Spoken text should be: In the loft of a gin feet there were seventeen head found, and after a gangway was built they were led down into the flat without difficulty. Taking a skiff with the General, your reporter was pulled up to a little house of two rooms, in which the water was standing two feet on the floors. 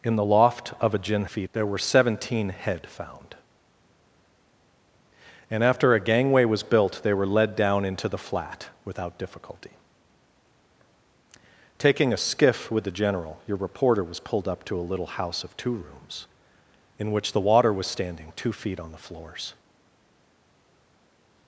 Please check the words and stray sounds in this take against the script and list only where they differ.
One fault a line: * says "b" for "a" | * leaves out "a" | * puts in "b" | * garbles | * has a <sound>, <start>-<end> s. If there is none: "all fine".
all fine